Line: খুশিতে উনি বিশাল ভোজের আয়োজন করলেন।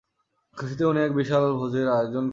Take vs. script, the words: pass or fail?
fail